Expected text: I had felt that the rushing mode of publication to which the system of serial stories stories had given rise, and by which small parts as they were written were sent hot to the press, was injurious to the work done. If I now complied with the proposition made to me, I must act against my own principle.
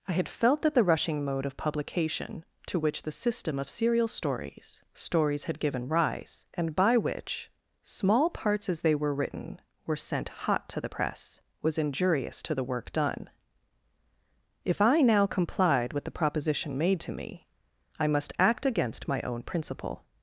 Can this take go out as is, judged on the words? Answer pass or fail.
pass